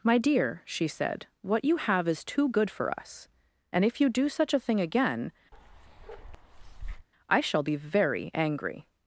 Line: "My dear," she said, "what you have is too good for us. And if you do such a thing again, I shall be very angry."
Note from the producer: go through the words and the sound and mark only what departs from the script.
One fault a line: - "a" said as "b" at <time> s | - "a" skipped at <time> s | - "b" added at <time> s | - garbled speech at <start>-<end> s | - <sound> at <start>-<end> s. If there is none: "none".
- bark at 5.5-7.1 s